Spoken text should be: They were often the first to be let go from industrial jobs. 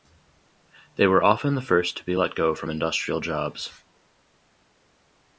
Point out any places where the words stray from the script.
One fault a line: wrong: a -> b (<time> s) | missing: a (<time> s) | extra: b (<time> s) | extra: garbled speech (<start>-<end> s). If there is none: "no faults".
no faults